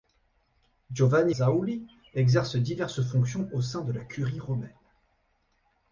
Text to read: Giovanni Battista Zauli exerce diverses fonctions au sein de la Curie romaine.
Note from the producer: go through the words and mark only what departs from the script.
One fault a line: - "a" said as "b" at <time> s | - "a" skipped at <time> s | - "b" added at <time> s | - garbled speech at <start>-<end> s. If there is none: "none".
- "Battista" skipped at 1.4 s